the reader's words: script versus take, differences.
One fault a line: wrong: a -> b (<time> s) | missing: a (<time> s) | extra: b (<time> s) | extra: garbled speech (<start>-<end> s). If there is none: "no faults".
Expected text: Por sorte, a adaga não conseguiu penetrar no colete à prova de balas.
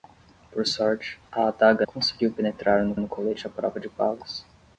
missing: não (1.8 s)
extra: no (3.0 s)